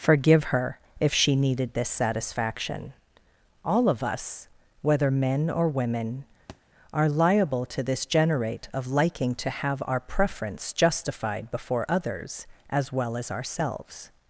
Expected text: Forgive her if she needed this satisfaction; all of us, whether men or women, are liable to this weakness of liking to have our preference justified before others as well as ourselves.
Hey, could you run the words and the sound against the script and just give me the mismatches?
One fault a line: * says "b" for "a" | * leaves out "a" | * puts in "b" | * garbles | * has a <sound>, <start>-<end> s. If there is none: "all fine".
* has a thud, 6.5-6.6 s
* says "generate" for "weakness"